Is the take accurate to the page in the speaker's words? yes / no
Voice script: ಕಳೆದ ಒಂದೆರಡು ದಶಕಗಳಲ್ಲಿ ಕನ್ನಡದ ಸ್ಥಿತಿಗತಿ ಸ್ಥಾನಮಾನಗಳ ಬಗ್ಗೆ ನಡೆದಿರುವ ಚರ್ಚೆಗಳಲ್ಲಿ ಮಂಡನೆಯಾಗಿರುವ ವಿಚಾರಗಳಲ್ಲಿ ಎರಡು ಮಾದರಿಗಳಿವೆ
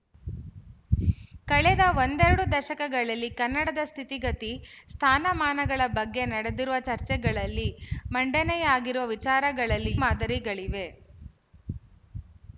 no